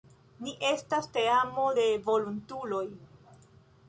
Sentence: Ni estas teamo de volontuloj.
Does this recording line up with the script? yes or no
yes